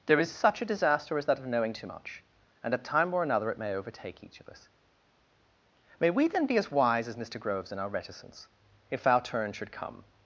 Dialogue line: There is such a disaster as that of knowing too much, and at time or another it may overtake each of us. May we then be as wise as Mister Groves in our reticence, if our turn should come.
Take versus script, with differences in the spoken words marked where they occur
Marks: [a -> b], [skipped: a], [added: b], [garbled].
There is such a disaster as that of knowing too much, and at time or another it may overtake each of us. May we then be as wise as Mister Groves in our reticence, if our turn should come.